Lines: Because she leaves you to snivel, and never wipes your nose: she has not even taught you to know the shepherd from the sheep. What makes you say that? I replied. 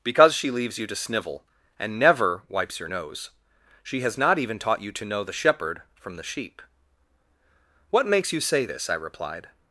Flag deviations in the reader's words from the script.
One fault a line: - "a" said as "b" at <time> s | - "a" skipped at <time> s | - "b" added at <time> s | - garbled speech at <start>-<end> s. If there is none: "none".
- "that" said as "this" at 8.6 s